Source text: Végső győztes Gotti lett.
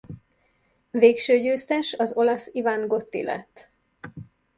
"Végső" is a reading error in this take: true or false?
false